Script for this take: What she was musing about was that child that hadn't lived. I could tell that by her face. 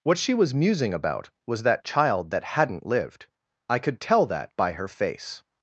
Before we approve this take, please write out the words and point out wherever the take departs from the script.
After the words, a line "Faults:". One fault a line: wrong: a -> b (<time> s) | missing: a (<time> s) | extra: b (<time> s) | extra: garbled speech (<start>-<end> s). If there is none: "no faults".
What she was musing about was that child that hadn't lived. I could tell that by her face.
Faults:
no faults